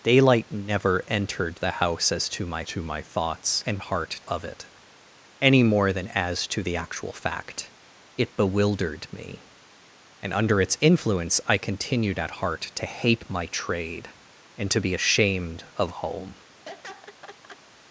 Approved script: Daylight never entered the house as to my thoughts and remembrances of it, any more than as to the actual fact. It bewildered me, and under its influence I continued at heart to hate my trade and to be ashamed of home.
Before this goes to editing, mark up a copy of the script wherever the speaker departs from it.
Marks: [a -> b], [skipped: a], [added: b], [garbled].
Daylight never entered the house as to my [added: to my] thoughts and [remembrances -> heart] of it, any more than as to the actual fact. It bewildered me, and under its influence I continued at heart to hate my trade and to be ashamed of home.